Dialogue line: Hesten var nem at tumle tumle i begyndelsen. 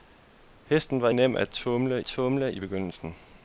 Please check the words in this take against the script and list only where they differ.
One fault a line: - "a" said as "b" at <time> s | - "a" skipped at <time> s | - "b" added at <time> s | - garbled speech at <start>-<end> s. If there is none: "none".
none